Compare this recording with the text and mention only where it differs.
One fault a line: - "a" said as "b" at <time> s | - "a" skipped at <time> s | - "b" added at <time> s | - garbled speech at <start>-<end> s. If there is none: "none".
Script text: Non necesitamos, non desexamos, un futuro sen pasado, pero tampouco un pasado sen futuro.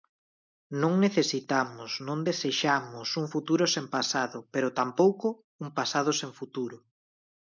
none